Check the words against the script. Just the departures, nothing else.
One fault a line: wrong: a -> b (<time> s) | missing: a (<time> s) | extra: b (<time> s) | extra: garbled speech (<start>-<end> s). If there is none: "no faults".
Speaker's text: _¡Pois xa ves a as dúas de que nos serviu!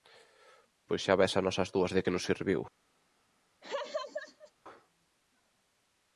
extra: nós (1.4 s)